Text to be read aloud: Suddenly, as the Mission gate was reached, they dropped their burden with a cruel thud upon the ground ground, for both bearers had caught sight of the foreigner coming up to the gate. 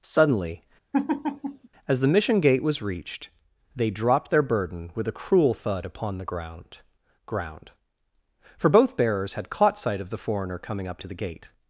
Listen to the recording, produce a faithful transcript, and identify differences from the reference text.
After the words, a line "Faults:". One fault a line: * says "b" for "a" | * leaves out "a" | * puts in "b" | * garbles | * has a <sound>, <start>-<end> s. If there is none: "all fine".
Suddenly, as the Mission gate was reached, they dropped their burden with a cruel thud upon the ground ground, for both bearers had caught sight of the foreigner coming up to the gate.
Faults:
* has a laugh, 0.9-1.7 s